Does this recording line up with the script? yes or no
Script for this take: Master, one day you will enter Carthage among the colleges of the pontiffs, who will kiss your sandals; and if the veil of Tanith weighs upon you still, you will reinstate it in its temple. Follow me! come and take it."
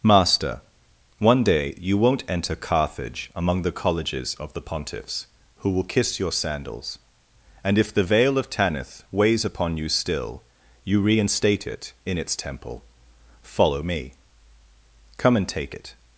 no